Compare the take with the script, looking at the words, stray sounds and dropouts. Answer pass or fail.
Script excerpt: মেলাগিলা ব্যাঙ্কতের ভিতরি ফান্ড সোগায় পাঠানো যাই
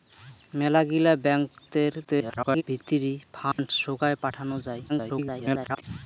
fail